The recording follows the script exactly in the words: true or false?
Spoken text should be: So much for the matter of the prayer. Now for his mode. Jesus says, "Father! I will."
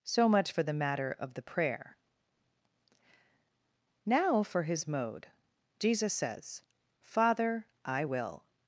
true